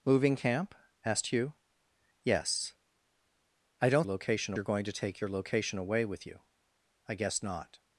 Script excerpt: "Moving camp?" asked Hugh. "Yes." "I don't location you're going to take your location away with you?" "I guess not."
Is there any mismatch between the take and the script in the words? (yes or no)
no